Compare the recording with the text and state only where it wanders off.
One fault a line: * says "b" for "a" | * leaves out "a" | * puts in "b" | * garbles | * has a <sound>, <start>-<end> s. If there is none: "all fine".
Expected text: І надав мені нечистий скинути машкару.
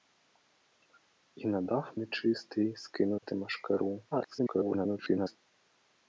* leaves out "мені"
* has a dropout, 3.2-3.2 s
* garbles